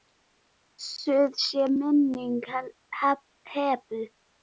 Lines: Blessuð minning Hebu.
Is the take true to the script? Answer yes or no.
no